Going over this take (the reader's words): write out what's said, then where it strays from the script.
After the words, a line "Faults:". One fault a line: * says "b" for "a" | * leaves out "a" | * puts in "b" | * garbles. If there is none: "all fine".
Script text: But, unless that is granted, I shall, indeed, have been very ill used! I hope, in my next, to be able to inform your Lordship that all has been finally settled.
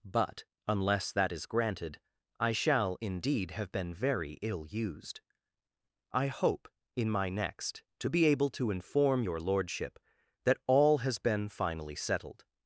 But, unless that is granted, I shall, indeed, have been very ill used! I hope, in my next, to be able to inform your Lordship that all has been finally settled.
Faults:
all fine